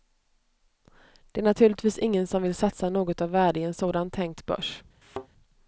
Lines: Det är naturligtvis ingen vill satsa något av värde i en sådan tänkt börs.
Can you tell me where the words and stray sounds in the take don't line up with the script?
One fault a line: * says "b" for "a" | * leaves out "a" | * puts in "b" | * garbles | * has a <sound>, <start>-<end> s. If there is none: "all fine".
* puts in "som"
* has a thud, 5.0-5.3 s